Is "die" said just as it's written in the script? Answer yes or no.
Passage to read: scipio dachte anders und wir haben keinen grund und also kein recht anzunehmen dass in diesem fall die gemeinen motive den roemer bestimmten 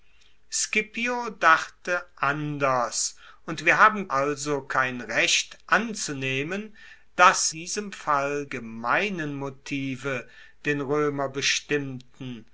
no